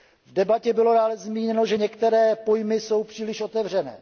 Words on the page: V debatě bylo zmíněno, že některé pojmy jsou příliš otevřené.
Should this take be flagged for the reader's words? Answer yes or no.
yes